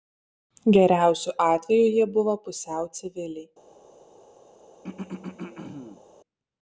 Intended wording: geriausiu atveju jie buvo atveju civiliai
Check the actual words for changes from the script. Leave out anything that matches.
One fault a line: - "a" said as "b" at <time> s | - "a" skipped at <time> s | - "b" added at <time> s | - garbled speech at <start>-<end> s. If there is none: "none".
- "atveju" said as "pusiau" at 2.5 s